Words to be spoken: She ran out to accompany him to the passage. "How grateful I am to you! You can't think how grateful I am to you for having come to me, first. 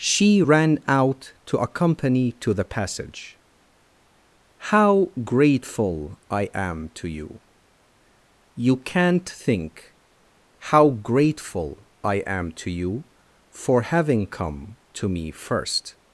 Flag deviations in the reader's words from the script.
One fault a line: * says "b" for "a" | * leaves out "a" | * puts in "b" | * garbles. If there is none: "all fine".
* leaves out "him"